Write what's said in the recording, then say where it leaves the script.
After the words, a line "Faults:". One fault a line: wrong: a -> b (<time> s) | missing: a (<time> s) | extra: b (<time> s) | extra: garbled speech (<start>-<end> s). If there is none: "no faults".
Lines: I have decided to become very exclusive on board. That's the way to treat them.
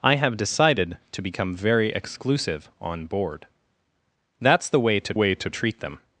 I have decided to become very exclusive on board. That's the way to way to treat them.
Faults:
extra: way to (5.1 s)